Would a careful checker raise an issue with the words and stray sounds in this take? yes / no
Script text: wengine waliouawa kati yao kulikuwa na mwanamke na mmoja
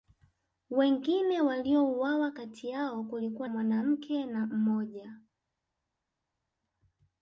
yes